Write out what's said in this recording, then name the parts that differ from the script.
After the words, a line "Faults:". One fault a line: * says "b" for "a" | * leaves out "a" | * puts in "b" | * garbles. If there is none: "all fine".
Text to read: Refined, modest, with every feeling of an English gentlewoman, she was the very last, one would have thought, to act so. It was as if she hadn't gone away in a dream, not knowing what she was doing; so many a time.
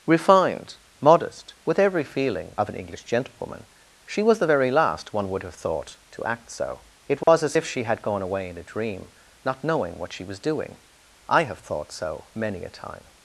Refined, modest, with every feeling of an English gentlewoman, she was the very last, one would have thought, to act so. It was as if she had gone away in a dream, not knowing what she was doing; I have thought so many a time.
Faults:
* says "had" for "hadn't"
* puts in "I have thought"